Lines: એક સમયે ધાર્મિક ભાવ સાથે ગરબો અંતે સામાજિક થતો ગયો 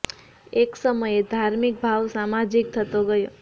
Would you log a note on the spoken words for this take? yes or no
yes